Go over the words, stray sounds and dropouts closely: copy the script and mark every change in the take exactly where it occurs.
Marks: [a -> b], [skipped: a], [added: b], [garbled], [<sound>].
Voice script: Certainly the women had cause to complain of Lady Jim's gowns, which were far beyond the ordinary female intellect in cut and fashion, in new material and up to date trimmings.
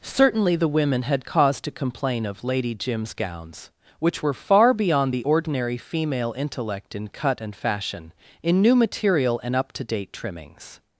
Certainly the women had cause to complain of Lady Jim's gowns, which were far beyond the ordinary female intellect in cut and fashion, in new material and up to date trimmings.